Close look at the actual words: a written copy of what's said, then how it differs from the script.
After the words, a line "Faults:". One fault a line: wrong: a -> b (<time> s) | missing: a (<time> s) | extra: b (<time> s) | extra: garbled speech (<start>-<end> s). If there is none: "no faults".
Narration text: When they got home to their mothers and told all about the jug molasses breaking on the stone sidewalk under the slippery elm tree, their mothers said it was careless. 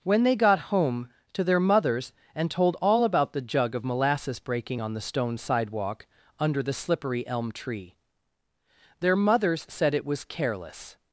When they got home to their mothers and told all about the jug of molasses breaking on the stone sidewalk under the slippery elm tree, their mothers said it was careless.
Faults:
extra: of (3.8 s)